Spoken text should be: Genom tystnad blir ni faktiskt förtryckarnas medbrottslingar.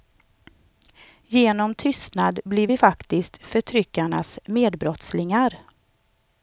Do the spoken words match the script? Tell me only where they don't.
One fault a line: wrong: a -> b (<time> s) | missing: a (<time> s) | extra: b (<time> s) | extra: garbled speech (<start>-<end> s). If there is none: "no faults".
wrong: ni -> vi (2.6 s)